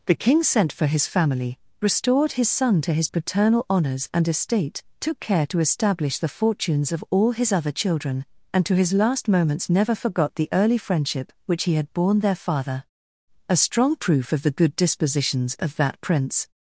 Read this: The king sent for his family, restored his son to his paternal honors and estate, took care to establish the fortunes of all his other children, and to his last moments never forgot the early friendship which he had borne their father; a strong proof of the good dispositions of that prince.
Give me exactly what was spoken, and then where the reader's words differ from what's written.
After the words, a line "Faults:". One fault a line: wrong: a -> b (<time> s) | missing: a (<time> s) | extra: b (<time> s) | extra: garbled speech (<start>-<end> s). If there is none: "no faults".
The king sent for his family, restored his son to his paternal honors and estate, took care to establish the fortunes of all his other children, and to his last moments never forgot the early friendship which he had borne their father; a strong proof of the good dispositions of that prince.
Faults:
no faults